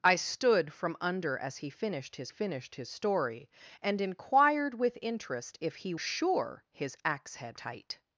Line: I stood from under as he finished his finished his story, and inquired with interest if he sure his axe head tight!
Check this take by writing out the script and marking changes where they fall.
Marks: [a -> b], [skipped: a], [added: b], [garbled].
I stood from under as he finished his finished his story, and inquired with interest if he sure his axe head tight!